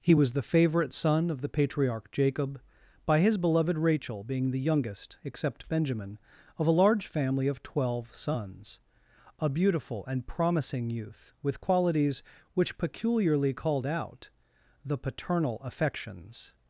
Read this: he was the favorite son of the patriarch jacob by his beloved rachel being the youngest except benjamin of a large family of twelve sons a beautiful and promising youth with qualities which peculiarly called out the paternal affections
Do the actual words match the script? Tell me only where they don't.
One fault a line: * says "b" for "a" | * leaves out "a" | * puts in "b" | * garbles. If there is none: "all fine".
all fine